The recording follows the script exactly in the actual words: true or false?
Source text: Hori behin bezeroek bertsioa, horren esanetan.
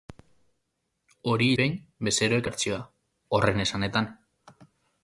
true